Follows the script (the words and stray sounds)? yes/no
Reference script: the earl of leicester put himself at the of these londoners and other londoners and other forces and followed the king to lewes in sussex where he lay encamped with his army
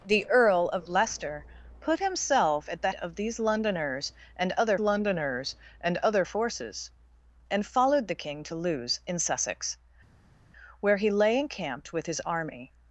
yes